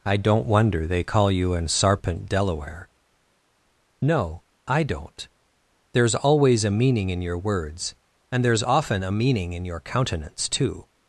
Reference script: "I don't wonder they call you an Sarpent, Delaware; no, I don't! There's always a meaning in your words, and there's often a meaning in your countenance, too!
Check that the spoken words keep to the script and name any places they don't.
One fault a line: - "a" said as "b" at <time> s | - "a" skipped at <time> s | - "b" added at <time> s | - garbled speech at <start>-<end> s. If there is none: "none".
none